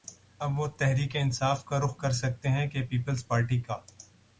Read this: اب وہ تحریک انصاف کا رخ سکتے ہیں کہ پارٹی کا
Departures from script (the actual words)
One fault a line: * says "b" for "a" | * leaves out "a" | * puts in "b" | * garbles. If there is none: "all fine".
* puts in "کر"
* puts in "پیپلز"